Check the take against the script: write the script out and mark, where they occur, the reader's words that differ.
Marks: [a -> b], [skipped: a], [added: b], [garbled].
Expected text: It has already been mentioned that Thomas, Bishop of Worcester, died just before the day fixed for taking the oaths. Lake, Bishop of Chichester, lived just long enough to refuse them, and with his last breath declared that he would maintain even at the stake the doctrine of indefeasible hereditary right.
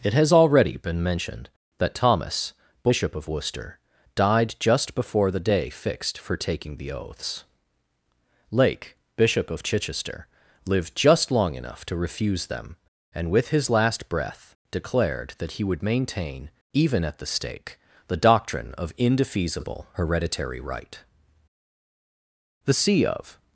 It has already been mentioned that Thomas, Bishop of Worcester, died just before the day fixed for taking the oaths. Lake, Bishop of Chichester, lived just long enough to refuse them, and with his last breath declared that he would maintain even at the stake the doctrine of indefeasible hereditary right. [added: The see of]